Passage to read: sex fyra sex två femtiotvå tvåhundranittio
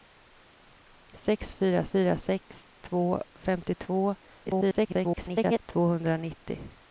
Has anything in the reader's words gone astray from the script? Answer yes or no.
yes